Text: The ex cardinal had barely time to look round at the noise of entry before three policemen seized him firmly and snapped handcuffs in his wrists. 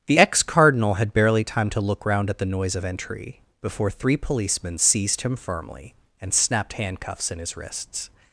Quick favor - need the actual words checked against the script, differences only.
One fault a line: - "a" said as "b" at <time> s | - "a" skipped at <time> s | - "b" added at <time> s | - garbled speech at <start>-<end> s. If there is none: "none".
none